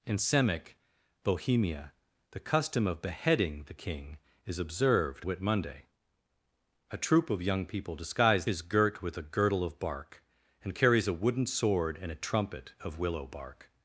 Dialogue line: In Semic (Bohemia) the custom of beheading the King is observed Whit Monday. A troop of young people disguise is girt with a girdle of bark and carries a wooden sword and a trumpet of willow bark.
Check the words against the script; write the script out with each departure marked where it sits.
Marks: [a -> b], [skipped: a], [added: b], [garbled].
In Semic (Bohemia) the custom of beheading the King is observed Whit Monday. A troop of young people disguise is girt with a girdle of bark and carries a wooden sword and a trumpet of willow bark.